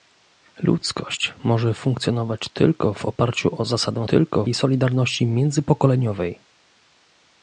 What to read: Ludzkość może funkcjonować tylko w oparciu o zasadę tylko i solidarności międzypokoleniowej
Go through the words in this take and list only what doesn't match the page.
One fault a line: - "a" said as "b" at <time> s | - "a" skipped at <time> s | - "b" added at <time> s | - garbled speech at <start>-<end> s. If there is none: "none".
none